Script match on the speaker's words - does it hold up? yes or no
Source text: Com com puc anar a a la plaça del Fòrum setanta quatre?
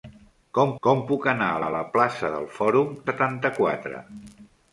yes